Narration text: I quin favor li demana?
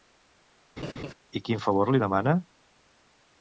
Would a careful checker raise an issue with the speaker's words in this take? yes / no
no